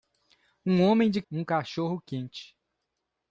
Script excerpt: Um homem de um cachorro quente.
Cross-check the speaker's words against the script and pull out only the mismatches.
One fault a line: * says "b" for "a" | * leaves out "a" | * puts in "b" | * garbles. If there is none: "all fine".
all fine